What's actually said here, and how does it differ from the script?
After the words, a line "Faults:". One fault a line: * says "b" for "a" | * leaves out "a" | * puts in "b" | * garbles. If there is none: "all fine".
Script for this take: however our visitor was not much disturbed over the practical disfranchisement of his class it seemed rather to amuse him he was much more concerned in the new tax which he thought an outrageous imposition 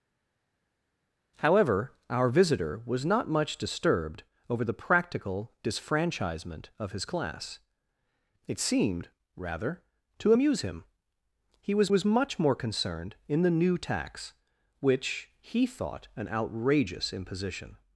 however our visitor was not much disturbed over the practical disfranchisement of his class it seemed rather to amuse him he was was much more concerned in the new tax which he thought an outrageous imposition
Faults:
* puts in "was"